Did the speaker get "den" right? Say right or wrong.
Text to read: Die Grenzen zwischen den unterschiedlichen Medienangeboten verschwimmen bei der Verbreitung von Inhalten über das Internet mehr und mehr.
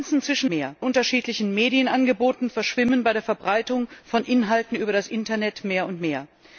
wrong